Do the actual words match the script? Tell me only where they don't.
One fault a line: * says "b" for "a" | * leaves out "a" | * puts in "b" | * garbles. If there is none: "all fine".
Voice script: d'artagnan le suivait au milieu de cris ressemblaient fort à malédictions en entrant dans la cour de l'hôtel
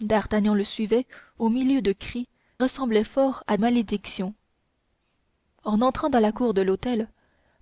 all fine